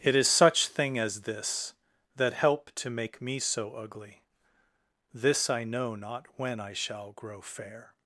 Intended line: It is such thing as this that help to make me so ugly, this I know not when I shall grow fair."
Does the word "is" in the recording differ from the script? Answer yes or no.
no